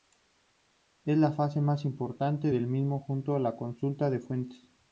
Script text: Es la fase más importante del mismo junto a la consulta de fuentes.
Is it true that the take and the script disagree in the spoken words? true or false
false